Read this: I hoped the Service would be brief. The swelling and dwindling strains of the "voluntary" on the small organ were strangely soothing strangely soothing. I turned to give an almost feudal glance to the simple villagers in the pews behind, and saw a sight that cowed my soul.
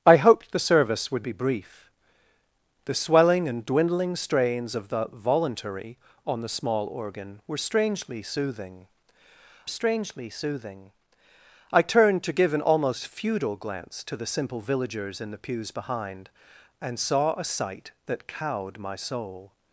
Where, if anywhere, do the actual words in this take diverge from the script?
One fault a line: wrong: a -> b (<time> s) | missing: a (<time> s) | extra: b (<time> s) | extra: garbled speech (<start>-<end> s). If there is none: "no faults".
no faults